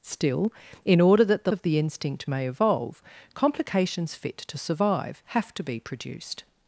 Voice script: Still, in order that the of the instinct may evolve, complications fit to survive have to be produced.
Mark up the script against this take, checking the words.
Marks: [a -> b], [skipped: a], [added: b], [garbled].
Still, in order that the of the instinct may evolve, complications fit to survive have to be produced.